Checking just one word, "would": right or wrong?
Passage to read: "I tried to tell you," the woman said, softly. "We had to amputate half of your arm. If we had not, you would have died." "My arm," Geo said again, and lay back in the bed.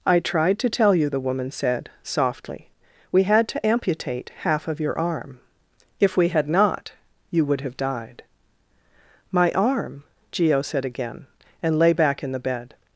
right